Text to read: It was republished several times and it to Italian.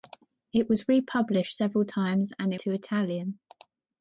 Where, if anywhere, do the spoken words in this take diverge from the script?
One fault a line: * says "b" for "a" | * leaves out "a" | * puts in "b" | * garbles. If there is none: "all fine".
all fine